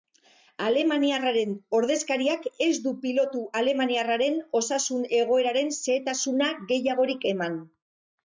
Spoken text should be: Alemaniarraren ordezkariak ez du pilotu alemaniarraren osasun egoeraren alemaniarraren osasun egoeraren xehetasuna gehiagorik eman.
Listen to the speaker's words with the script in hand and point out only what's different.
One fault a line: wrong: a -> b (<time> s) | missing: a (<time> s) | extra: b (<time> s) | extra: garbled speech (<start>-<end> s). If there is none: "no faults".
missing: alemaniarraren osasun egoeraren (5.8 s)